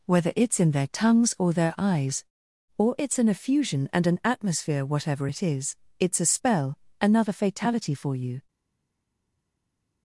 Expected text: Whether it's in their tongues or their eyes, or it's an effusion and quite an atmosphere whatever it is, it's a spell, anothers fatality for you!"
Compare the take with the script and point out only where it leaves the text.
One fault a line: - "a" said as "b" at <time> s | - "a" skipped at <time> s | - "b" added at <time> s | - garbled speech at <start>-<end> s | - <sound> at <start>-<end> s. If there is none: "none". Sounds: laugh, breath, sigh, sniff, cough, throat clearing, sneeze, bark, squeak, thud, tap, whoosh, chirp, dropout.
- "quite" skipped at 4.1 s
- "anothers" said as "another" at 7.0 s